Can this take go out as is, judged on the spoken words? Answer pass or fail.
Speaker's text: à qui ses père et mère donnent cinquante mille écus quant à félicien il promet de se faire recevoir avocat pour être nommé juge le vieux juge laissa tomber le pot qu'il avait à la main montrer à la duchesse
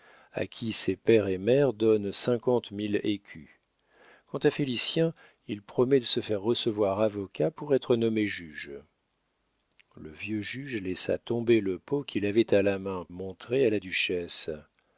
pass